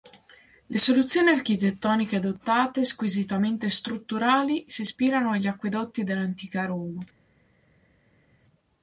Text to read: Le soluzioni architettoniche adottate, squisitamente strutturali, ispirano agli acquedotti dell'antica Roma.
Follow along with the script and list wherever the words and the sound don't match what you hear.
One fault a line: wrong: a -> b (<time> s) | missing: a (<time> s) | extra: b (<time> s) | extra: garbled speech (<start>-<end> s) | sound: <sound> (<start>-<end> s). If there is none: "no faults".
extra: si (4.7 s)